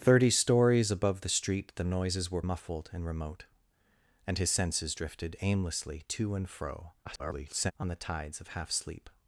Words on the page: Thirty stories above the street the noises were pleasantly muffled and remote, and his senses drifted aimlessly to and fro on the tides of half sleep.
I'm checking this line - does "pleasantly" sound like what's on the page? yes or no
no